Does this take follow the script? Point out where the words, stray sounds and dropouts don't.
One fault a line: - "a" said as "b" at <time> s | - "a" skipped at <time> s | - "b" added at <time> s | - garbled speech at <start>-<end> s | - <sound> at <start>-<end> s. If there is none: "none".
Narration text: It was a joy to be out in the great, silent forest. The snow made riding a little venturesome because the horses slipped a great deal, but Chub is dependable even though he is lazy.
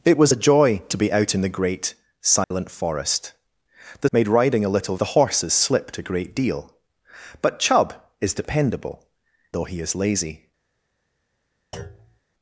- dropout at 2.4-2.5 s
- "snow" skipped at 4.1 s
- "venturesome because" skipped at 4.9 s
- "even" skipped at 9.1 s
- thud at 11.7-12.2 s